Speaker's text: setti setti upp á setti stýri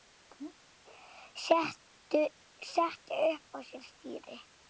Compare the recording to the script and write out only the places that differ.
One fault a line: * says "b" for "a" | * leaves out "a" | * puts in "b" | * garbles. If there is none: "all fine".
* leaves out "setti"
* says "sér" for "setti"